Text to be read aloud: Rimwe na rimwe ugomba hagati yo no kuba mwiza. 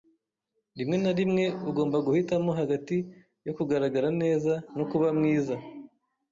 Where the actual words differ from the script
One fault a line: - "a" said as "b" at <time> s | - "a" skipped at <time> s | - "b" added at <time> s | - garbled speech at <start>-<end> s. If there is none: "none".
- "guhitamo" added at 2.1 s
- "kugaragara neza" added at 3.6 s